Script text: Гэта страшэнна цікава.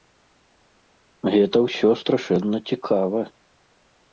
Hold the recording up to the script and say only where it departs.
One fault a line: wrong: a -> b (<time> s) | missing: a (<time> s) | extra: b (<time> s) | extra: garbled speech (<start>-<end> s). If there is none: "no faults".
extra: ўсё (1.6 s)